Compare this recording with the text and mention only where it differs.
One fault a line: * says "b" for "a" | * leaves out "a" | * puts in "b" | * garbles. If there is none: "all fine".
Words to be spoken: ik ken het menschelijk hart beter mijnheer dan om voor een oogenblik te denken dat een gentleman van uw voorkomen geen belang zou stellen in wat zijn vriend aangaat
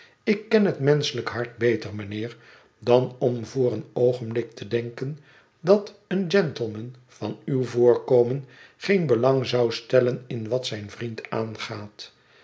all fine